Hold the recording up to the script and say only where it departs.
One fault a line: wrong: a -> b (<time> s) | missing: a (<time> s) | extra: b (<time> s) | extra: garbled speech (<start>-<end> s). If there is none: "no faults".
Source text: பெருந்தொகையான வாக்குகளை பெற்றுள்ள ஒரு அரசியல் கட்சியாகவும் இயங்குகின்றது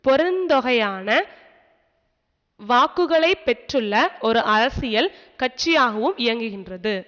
no faults